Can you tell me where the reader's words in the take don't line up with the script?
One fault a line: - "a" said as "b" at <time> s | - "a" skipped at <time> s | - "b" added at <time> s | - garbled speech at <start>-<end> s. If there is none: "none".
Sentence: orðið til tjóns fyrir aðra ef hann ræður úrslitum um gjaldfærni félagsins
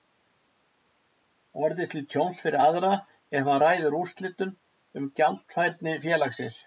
none